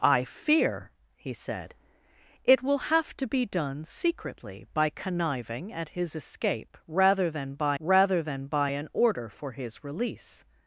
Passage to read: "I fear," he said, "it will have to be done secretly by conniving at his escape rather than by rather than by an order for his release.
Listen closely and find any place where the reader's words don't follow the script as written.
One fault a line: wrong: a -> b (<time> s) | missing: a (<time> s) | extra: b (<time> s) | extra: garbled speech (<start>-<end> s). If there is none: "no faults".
no faults